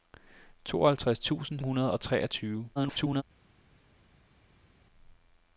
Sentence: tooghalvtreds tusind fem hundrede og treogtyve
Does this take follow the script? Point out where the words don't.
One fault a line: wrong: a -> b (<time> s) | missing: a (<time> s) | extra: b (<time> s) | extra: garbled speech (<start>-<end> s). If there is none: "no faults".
missing: fem (1.6 s)
extra: garbled speech (2.8-3.2 s)